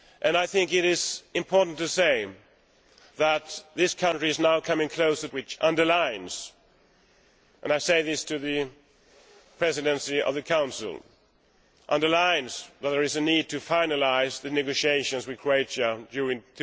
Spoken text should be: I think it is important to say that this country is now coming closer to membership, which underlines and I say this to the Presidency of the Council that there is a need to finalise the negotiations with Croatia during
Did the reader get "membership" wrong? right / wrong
wrong